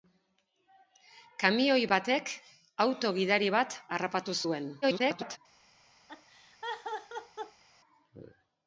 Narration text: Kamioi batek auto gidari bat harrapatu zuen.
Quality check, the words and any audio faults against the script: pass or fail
fail